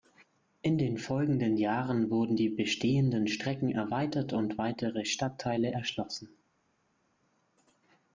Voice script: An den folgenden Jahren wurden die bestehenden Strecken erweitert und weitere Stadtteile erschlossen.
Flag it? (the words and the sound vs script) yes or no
yes